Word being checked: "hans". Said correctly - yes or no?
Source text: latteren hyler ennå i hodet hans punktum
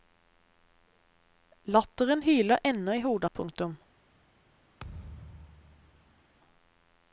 no